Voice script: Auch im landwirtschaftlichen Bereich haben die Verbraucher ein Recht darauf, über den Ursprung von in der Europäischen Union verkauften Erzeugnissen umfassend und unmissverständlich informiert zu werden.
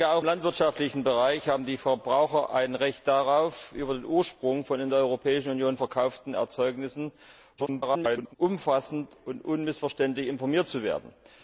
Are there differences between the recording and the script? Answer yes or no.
yes